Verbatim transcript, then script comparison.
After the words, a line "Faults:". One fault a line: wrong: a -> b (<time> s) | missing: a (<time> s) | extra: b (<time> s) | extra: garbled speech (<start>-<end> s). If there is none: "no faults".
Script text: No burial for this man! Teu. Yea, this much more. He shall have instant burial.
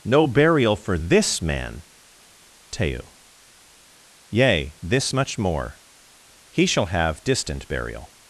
No burial for this man! Teu. Yea, this much more. He shall have distant burial.
Faults:
wrong: instant -> distant (7.2 s)